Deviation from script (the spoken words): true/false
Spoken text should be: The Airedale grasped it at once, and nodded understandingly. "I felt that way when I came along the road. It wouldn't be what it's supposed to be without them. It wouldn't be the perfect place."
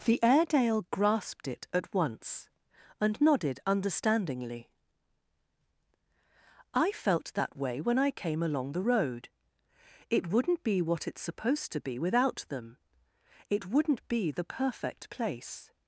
false